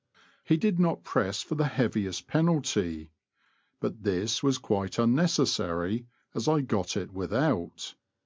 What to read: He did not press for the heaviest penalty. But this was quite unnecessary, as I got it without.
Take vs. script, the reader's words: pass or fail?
pass